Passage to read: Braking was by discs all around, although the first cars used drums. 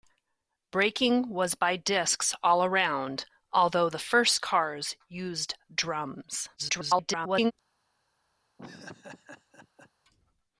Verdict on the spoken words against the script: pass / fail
fail